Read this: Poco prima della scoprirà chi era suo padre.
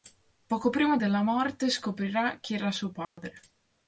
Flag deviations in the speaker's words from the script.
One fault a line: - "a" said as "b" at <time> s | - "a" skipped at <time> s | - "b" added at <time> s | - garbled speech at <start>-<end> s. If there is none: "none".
- "morte" added at 1.2 s